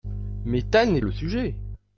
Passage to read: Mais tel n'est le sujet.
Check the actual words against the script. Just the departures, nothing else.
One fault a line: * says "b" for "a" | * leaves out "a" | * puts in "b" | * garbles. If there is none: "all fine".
all fine